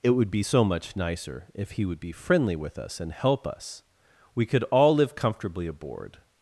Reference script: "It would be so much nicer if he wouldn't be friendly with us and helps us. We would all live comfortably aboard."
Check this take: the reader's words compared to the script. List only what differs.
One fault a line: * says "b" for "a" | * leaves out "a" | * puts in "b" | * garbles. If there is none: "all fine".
* says "would" for "wouldn't"
* says "help" for "helps"
* says "could" for "would"